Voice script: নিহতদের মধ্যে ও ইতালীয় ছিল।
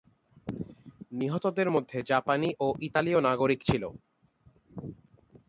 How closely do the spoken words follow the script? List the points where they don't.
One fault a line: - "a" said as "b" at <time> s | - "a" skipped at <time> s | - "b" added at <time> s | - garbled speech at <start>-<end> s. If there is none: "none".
- "জাপানি" added at 2.0 s
- "নাগরিক" added at 3.2 s